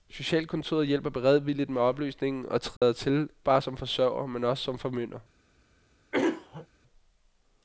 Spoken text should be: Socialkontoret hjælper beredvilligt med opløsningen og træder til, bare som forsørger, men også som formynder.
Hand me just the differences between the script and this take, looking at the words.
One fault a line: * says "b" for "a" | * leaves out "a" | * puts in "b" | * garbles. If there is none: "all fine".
all fine